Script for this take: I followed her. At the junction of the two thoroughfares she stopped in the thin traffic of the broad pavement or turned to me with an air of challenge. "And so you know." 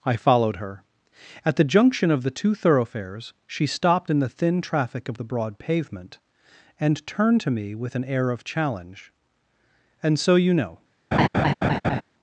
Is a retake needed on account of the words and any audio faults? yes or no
yes